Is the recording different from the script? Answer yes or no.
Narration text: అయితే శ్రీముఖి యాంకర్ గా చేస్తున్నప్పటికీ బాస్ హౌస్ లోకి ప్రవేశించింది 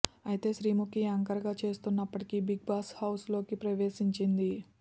yes